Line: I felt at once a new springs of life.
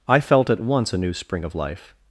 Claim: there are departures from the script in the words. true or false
true